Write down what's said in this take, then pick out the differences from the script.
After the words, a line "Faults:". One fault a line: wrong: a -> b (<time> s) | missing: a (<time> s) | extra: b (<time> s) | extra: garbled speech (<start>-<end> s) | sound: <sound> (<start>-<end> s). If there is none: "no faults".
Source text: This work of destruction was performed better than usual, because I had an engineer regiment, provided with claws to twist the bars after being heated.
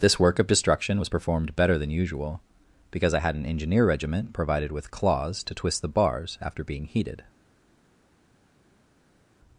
This work of destruction was performed better than usual, because I had an engineer regiment, provided with claws to twist the bars after being heated.
Faults:
no faults